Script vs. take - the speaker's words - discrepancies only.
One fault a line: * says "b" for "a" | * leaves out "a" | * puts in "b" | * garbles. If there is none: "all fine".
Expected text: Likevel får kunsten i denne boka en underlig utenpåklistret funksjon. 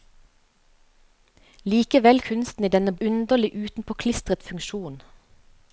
* leaves out "får"
* leaves out "boka en"